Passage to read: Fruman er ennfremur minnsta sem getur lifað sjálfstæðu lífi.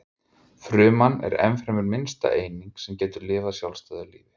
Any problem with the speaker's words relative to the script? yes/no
yes